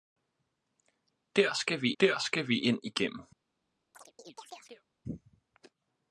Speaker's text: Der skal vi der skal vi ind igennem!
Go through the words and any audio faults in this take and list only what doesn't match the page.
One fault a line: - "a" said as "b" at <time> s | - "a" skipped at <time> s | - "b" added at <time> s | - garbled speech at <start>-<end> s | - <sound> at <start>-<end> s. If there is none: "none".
- chirp at 3.9-4.9 s